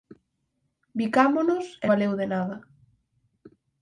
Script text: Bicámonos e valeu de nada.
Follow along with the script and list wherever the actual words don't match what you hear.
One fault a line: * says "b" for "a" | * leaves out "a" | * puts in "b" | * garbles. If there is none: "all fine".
all fine